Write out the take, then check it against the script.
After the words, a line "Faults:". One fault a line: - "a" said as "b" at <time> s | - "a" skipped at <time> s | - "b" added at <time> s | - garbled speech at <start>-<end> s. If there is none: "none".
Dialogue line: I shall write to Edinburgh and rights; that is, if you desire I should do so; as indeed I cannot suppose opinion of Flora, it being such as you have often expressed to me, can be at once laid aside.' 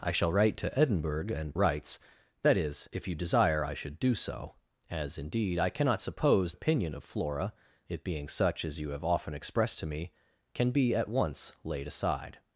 I shall write to Edinburgh and rights; that is, if you desire I should do so; as indeed I cannot suppose opinion of Flora, it being such as you have often expressed to me, can be at once laid aside.'
Faults:
none